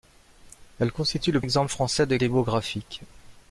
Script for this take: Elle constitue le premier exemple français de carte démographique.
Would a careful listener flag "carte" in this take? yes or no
yes